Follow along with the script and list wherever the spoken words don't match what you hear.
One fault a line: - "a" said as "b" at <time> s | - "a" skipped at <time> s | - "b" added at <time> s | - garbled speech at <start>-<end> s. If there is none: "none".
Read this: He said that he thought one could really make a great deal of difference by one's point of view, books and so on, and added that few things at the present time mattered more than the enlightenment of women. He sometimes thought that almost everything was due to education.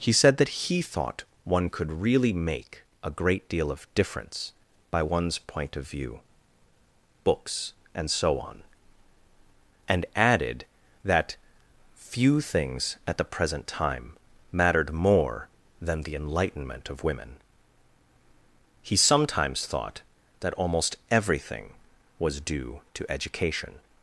none